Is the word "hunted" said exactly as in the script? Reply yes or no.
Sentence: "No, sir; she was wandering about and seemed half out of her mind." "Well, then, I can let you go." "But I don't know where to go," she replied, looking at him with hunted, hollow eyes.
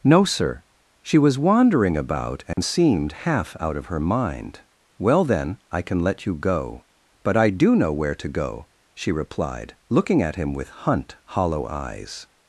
no